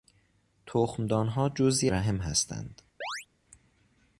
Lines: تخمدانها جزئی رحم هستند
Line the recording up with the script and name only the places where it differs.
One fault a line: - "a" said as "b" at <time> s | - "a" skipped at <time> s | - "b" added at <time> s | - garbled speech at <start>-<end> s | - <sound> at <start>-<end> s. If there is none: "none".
- chirp at 3.0-3.3 s